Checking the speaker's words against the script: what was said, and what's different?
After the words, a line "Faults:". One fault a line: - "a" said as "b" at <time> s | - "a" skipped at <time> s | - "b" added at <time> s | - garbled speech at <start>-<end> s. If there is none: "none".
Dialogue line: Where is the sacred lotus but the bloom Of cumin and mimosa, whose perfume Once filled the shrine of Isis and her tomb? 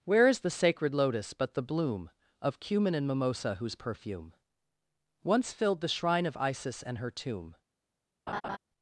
Where is the sacred lotus but the bloom Of cumin and mimosa, whose perfume Once filled the shrine of Isis and her tomb?
Faults:
none